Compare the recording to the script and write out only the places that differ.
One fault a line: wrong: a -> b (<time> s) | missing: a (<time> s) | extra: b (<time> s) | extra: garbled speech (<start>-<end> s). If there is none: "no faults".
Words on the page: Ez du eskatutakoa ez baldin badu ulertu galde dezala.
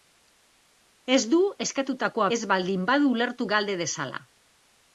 no faults